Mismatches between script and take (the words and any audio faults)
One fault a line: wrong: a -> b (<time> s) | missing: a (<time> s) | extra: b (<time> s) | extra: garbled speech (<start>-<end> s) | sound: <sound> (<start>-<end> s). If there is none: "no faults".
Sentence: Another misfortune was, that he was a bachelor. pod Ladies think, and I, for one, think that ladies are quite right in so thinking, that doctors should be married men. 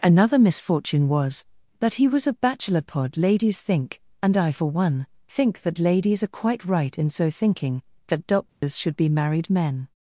sound: dropout (8.5-8.6 s)